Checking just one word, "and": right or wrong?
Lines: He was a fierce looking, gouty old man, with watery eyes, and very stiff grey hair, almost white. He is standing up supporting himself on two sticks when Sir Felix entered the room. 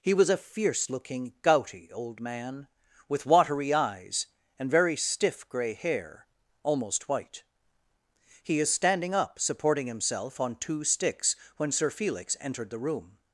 right